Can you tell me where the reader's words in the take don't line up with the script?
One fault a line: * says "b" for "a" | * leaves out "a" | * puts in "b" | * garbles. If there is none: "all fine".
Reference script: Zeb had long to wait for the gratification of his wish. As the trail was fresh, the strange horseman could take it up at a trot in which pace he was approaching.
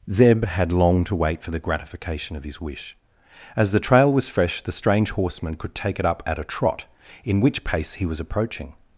all fine